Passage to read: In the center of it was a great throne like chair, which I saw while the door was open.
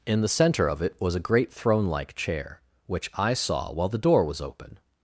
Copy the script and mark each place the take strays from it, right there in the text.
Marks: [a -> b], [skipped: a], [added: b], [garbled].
In the center of it was a great throne like chair, which I saw while the door was open.